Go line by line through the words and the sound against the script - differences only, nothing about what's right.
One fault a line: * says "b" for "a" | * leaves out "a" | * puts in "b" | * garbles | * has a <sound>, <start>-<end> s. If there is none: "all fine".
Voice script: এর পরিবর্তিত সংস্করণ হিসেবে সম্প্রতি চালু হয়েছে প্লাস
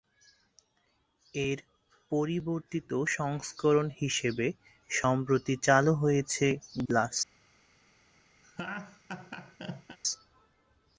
* has a laugh, 8.4-10.0 s